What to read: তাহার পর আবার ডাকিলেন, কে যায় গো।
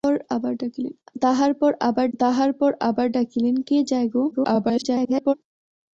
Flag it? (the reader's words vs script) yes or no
yes